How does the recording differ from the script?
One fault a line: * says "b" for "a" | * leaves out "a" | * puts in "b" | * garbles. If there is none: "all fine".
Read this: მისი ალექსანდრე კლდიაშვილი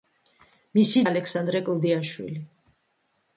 all fine